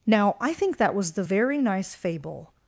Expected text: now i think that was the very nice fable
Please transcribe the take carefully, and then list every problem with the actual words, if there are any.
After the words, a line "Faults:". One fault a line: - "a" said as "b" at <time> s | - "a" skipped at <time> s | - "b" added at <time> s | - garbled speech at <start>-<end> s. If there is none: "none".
now i think that was the very nice fable
Faults:
none